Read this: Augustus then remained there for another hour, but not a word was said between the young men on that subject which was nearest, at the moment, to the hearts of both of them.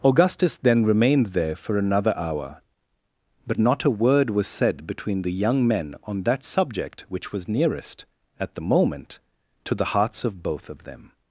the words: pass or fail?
pass